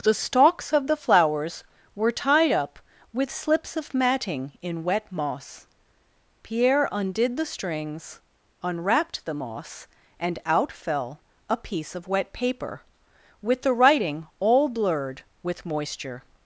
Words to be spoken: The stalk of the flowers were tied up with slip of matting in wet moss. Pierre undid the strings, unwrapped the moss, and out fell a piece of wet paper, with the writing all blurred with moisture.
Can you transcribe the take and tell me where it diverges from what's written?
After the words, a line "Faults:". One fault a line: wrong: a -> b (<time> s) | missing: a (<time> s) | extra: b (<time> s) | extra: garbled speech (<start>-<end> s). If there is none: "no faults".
The stalks of the flowers were tied up with slips of matting in wet moss. Pierre undid the strings, unwrapped the moss, and out fell a piece of wet paper, with the writing all blurred with moisture.
Faults:
wrong: stalk -> stalks (0.1 s)
wrong: slip -> slips (3.3 s)